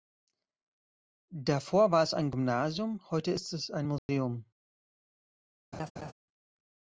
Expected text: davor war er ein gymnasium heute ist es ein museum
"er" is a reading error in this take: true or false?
true